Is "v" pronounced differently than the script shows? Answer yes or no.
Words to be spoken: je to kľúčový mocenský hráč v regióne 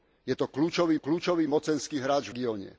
yes